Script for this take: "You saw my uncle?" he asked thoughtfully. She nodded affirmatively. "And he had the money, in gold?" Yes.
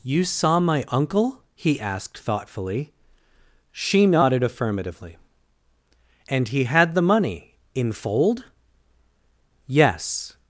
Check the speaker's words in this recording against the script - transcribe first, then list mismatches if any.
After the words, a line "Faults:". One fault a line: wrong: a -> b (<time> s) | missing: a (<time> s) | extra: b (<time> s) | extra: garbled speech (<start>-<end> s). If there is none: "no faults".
"You saw my uncle?" he asked thoughtfully. She nodded affirmatively. "And he had the money, in fold?" Yes.
Faults:
wrong: gold -> fold (7.9 s)